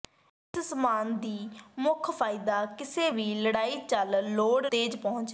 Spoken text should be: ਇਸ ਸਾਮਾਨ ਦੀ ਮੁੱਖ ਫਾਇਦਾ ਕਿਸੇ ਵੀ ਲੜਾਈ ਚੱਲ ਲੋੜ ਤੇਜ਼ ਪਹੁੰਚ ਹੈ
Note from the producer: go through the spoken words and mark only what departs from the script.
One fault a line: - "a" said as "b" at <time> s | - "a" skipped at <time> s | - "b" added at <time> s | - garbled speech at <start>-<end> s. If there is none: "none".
none